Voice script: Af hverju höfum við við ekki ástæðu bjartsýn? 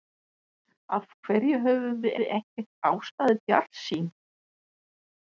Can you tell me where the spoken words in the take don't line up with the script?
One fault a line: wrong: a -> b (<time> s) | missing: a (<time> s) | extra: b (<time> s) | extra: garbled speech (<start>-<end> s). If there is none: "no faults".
no faults